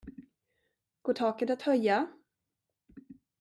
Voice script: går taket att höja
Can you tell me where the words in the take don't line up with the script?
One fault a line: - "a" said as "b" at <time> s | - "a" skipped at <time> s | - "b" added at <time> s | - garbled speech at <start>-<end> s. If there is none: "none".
none